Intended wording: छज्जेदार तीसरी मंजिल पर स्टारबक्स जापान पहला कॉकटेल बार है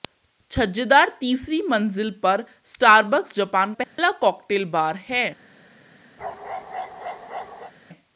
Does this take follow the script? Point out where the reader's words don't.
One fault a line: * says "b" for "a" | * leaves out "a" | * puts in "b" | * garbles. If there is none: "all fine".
all fine